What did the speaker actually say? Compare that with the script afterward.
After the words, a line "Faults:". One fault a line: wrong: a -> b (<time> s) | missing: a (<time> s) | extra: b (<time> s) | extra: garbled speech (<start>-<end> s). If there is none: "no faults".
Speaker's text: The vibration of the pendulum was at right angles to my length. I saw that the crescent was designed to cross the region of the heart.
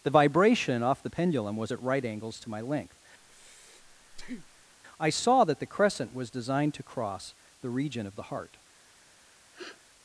The vibration off the pendulum was at right angles to my length. I saw that the crescent was designed to cross the region of the heart.
Faults:
wrong: of -> off (0.8 s)